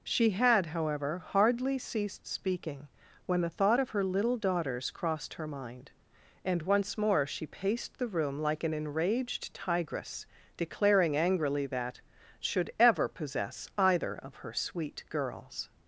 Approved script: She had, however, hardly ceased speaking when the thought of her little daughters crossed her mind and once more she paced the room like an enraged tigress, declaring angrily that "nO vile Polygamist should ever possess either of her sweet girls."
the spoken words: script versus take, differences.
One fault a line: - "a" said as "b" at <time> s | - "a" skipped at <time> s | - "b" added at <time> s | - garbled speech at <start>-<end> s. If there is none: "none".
- "nO vile Polygamist" skipped at 12.0 s